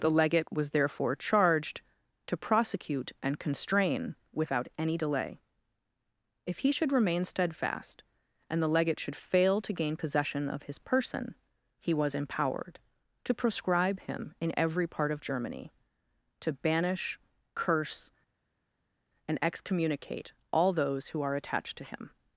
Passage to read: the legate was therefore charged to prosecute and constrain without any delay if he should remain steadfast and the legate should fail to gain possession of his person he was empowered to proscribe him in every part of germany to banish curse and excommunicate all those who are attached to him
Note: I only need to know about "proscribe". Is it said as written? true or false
true